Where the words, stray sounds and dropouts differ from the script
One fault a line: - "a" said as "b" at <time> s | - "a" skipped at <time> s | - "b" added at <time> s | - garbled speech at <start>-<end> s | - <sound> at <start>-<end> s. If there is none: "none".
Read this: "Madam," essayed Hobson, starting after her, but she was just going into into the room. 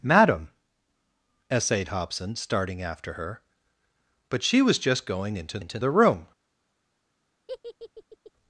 - laugh at 7.5-8.3 s